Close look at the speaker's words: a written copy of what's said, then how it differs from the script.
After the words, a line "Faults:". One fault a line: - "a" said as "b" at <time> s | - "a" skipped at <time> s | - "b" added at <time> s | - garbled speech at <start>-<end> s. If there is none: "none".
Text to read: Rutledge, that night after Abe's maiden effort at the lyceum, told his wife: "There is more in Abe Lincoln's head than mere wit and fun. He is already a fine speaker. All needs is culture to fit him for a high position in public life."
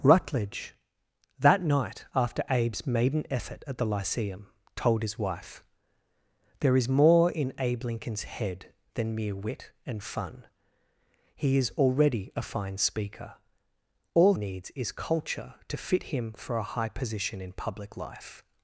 Rutledge, that night after Abe's maiden effort at the lyceum, told his wife: "There is more in Abe Lincoln's head than mere wit and fun. He is already a fine speaker. All needs is culture to fit him for a high position in public life."
Faults:
none